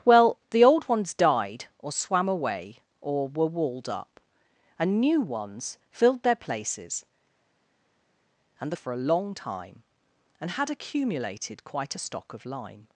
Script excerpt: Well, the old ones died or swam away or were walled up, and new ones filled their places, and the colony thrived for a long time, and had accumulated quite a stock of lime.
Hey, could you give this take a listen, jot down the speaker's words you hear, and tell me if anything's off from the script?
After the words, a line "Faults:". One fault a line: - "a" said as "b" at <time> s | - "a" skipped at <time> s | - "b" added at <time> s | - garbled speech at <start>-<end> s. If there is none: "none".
Well, the old ones died or swam away or were walled up, and new ones filled their places, and for a long time, and had accumulated quite a stock of lime.
Faults:
- "the colony thrived" skipped at 8.7 s